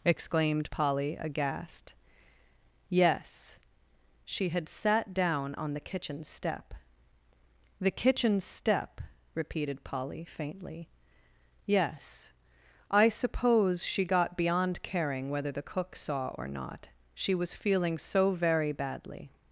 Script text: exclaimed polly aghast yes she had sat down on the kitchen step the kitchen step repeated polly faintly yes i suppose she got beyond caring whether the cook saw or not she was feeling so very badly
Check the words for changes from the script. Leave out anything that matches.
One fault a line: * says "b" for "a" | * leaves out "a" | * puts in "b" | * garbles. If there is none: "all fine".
all fine